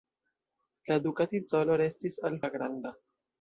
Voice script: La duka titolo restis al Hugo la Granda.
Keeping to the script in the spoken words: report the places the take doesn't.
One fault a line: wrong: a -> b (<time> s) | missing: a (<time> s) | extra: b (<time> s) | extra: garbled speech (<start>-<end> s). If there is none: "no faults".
missing: Hugo (2.4 s)